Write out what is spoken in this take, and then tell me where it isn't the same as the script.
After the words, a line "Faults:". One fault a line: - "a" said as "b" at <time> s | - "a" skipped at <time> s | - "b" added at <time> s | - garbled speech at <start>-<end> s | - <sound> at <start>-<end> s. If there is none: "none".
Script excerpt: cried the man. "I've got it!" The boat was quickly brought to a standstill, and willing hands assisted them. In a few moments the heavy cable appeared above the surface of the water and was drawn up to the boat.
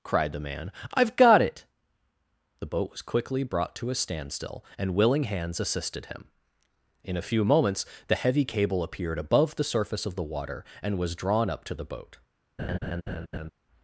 cried the man. "I've got it!" The boat was quickly brought to a standstill, and willing hands assisted him. In a few moments the heavy cable appeared above the surface of the water and was drawn up to the boat.
Faults:
- "them" said as "him" at 6.1 s
- laugh at 12.6-13.5 s